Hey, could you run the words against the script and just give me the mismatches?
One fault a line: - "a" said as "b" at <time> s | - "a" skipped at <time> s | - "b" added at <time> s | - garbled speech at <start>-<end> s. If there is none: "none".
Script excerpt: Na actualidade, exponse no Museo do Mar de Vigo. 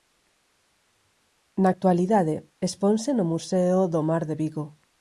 none